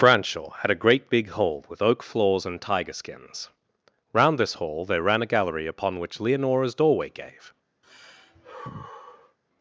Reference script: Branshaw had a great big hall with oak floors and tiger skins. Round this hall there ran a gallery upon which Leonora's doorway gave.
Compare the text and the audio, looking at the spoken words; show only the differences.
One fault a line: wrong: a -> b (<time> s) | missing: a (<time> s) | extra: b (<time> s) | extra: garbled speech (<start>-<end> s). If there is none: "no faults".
no faults